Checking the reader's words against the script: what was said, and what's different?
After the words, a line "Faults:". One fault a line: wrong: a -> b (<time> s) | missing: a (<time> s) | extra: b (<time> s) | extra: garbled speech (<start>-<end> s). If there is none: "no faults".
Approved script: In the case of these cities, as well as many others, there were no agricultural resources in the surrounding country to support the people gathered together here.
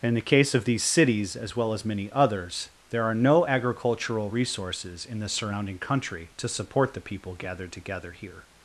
In the case of these cities, as well as many others, there are no agricultural resources in the surrounding country to support the people gathered together here.
Faults:
wrong: were -> are (3.0 s)